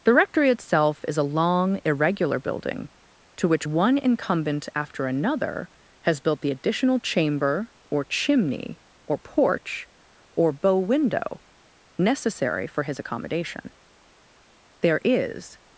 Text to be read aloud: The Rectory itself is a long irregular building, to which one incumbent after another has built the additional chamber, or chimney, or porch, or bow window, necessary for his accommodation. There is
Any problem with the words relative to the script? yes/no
no